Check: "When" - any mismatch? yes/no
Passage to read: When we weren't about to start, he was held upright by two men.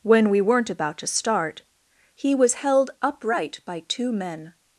no